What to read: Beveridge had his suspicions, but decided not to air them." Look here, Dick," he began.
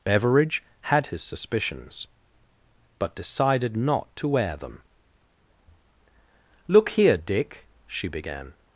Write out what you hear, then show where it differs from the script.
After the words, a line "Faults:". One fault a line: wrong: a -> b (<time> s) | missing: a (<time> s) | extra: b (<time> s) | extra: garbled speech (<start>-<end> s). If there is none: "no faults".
Beveridge had his suspicions, but decided not to air them." Look here, Dick," she began.
Faults:
wrong: he -> she (7.9 s)